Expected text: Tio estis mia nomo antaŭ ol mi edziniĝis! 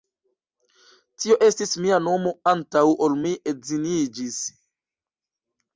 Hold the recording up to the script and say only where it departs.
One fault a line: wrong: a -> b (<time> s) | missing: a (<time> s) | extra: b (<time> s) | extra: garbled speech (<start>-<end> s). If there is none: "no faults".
no faults